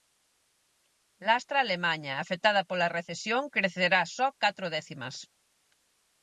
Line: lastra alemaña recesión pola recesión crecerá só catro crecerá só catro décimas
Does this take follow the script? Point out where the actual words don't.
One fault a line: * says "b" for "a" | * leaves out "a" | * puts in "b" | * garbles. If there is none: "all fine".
* says "afectada" for "recesión"
* leaves out "crecerá só catro"